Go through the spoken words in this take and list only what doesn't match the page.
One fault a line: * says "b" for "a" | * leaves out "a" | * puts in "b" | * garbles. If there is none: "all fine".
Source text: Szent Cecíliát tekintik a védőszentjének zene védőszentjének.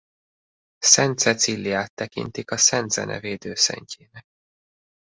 * says "szent" for "védőszentjének"